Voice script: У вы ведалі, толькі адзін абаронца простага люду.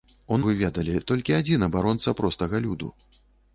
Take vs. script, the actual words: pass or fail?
pass